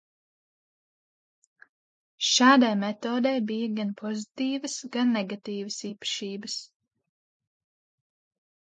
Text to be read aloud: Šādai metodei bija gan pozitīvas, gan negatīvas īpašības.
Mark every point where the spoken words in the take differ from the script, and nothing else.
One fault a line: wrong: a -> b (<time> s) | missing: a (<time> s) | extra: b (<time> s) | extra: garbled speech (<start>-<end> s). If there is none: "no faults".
no faults